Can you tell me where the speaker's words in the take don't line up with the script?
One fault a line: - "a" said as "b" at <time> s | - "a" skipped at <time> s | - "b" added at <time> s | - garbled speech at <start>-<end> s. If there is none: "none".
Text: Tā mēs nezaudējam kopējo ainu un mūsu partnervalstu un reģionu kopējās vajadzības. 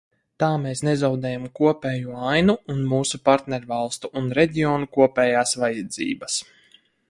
none